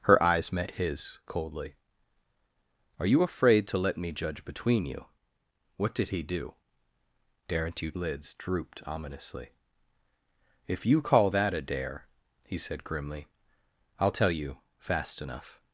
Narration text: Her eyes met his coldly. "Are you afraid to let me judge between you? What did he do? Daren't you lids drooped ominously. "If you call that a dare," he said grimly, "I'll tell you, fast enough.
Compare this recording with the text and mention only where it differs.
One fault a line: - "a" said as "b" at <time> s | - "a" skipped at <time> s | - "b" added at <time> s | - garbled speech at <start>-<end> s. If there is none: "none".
none